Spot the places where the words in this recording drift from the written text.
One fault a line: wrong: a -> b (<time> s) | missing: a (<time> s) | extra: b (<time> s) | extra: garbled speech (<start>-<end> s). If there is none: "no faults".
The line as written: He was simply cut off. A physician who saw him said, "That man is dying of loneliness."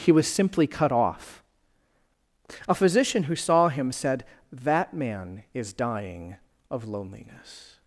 no faults